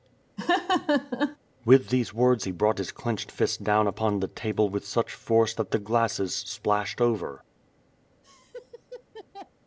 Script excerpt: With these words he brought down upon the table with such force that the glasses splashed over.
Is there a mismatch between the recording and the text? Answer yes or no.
yes